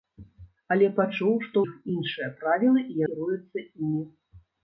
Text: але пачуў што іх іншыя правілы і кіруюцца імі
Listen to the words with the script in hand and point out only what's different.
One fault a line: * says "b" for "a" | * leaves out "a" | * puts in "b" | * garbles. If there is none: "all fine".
all fine